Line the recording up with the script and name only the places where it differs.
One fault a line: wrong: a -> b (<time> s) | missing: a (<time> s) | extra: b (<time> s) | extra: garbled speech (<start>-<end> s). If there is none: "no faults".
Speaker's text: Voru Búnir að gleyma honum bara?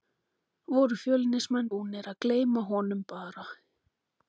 extra: Fjölnismenn (1.0 s)